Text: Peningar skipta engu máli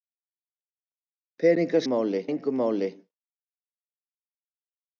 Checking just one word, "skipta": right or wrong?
wrong